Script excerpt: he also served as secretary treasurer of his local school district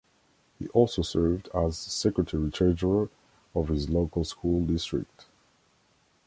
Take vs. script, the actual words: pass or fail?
pass